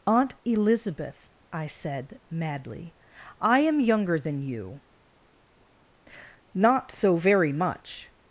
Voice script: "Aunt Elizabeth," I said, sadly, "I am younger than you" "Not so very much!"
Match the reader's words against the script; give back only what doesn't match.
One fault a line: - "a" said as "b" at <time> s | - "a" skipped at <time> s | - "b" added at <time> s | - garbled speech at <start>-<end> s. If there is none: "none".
- "sadly" said as "madly" at 2.3 s